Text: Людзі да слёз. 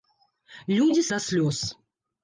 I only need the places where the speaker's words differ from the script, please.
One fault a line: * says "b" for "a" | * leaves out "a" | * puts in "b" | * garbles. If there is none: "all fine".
all fine